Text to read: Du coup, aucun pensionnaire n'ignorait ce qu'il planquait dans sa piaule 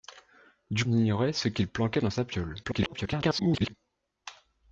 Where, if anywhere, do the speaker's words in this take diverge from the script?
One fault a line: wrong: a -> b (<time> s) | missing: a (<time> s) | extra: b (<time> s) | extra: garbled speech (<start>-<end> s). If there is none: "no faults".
missing: coup aucun pensionnaire (0.8 s)
extra: garbled speech (2.6-3.7 s)